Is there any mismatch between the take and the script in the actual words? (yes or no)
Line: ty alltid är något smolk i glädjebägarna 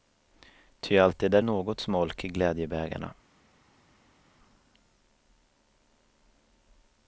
no